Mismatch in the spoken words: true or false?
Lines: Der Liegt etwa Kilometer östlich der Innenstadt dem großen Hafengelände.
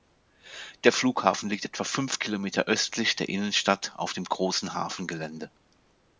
true